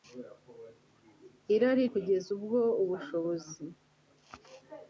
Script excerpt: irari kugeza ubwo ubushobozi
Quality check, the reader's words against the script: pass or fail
pass